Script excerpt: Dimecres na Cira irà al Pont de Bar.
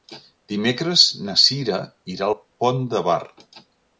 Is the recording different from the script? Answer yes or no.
no